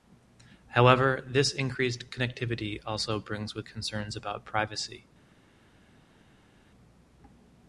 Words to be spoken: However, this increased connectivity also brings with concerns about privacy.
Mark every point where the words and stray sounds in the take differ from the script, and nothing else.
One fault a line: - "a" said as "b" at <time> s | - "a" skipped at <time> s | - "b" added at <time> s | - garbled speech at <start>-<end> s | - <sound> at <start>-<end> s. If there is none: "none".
none